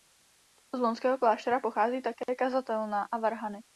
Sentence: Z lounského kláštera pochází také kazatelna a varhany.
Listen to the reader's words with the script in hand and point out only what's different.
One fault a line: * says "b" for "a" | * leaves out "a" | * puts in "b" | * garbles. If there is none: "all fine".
all fine